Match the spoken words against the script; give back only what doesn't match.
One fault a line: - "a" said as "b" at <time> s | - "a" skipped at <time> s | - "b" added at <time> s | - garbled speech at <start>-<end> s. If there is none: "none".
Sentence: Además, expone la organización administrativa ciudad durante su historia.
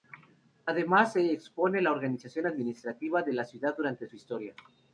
- "se" added at 1.1 s
- "de la" added at 3.2 s